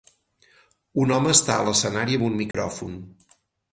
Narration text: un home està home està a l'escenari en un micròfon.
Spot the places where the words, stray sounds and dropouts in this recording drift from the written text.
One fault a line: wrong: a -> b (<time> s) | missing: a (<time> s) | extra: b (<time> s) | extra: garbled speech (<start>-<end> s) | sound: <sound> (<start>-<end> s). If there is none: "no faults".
missing: home està (1.6 s)
wrong: en -> amb (2.2 s)
sound: dropout (2.5-2.5 s)